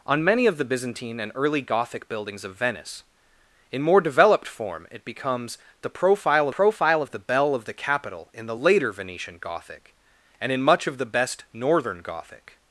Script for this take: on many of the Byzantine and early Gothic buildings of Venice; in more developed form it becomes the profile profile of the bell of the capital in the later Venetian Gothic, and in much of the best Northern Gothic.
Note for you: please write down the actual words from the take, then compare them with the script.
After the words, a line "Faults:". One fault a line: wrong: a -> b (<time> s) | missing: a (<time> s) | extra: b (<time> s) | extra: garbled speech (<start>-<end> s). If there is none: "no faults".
on many of the Byzantine and early Gothic buildings of Venice; in more developed form it becomes the profile profile of the bell of the capital in the later Venetian Gothic, and in much of the best Northern Gothic.
Faults:
no faults